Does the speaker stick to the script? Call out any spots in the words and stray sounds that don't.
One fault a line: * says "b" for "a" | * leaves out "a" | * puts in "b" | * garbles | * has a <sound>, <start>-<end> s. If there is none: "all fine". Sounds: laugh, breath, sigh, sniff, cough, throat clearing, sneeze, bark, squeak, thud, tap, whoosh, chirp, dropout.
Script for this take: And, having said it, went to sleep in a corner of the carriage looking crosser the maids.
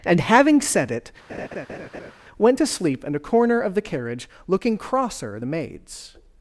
* has a laugh, 1.3-2.1 s